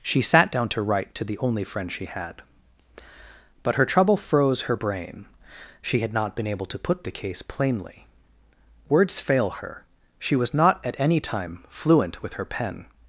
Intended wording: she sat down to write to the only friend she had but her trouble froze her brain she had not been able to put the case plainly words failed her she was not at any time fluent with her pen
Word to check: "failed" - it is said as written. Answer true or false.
false